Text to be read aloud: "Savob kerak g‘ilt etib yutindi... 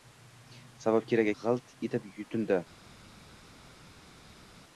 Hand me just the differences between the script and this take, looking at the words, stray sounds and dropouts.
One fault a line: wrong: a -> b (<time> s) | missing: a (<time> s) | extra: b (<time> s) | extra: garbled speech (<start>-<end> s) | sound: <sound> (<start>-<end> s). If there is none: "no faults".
no faults